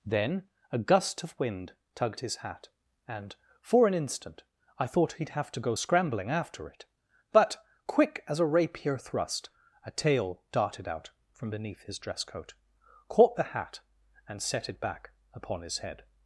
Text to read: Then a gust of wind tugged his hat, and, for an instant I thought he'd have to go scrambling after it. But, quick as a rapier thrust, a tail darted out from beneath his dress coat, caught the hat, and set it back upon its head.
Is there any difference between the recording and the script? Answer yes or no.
yes